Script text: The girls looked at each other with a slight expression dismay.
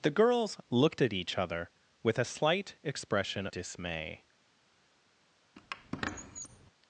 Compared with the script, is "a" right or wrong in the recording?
right